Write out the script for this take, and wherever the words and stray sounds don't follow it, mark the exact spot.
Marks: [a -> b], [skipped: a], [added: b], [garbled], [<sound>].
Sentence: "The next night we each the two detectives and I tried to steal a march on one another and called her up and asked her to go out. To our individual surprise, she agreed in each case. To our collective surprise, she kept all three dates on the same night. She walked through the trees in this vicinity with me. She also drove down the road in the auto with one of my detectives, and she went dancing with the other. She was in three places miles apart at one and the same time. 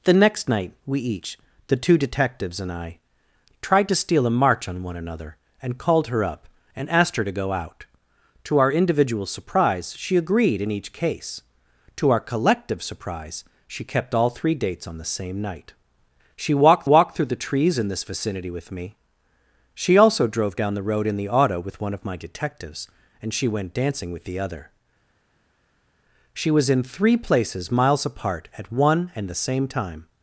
"The next night we each the two detectives and I tried to steal a march on one another and called her up and asked her to go out. To our individual surprise, she agreed in each case. To our collective surprise, she kept all three dates on the same night. She walked [added: walked] through the trees in this vicinity with me. She also drove down the road in the auto with one of my detectives, and she went dancing with the other. She was in three places miles apart at one and the same time.